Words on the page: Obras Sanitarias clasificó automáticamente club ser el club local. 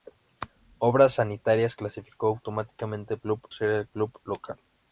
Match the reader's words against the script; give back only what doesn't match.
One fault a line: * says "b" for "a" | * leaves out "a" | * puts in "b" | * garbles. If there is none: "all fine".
all fine